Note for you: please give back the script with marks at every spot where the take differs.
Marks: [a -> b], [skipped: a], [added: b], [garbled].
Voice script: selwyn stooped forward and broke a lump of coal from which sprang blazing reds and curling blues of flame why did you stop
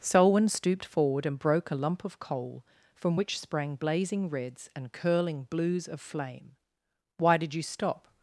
selwyn stooped forward and broke a lump of coal from which sprang blazing reds and curling blues of flame why did you stop